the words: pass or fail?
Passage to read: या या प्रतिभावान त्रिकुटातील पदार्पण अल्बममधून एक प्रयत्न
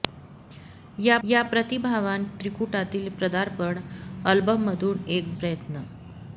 pass